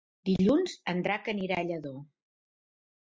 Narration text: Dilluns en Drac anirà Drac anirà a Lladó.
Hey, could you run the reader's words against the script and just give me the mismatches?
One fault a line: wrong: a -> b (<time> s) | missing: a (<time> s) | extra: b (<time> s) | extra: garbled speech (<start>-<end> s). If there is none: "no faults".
missing: Drac anirà (1.6 s)